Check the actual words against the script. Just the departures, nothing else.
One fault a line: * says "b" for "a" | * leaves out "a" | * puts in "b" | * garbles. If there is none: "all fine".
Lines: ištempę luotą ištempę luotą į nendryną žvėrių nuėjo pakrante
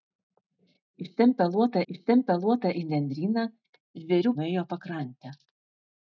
all fine